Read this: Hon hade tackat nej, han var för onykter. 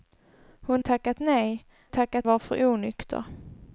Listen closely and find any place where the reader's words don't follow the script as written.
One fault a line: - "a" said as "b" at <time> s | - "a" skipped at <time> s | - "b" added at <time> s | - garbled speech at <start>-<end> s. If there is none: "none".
- "hade" skipped at 0.8 s
- "han" said as "tackat" at 1.9 s